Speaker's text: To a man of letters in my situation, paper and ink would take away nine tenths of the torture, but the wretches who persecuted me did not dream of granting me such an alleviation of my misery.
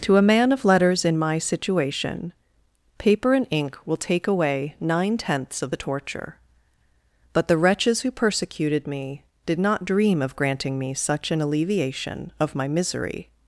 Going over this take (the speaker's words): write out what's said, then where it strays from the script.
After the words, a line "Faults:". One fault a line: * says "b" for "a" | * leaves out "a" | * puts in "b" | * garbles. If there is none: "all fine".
To a man of letters in my situation, paper and ink will take away nine tenths of the torture, but the wretches who persecuted me did not dream of granting me such an alleviation of my misery.
Faults:
* says "will" for "would"